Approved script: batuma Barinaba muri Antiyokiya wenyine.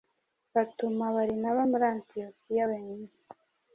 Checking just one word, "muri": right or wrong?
right